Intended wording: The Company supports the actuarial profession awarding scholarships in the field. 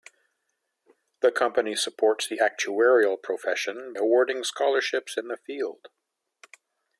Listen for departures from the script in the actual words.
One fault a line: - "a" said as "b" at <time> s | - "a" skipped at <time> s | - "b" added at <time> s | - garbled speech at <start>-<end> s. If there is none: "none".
none